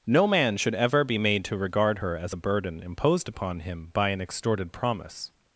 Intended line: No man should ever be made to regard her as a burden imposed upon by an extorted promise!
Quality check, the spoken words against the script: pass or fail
fail